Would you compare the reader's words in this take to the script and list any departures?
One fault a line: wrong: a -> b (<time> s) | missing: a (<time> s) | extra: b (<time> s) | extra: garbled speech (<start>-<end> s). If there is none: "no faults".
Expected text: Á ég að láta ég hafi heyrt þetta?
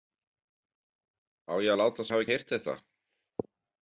no faults